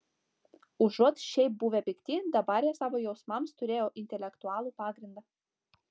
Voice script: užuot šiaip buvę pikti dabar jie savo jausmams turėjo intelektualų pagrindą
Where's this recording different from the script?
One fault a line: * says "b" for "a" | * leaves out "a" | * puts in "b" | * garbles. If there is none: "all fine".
all fine